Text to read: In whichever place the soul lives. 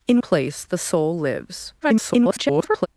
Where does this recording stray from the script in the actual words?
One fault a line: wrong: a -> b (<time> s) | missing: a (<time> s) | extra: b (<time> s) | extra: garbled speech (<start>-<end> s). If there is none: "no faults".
missing: whichever (0.2 s)
extra: garbled speech (1.8-2.9 s)